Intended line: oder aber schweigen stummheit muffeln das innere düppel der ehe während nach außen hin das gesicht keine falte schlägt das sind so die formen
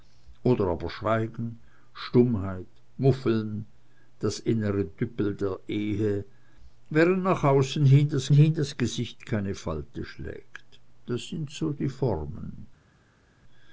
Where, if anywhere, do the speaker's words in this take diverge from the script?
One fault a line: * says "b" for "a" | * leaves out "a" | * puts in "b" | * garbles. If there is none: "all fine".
* puts in "hin das"